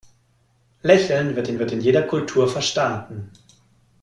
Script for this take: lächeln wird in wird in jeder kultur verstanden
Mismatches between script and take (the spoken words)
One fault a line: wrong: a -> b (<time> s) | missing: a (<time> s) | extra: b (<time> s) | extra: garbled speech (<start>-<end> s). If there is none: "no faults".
no faults